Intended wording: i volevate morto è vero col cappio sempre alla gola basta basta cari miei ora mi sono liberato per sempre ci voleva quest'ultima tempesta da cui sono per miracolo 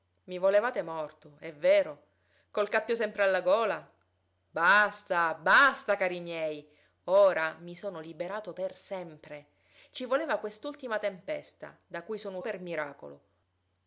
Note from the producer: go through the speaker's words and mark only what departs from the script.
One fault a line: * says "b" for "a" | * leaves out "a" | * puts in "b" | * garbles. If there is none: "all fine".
all fine